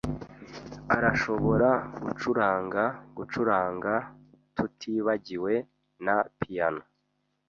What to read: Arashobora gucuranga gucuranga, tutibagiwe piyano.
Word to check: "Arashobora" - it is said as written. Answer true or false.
true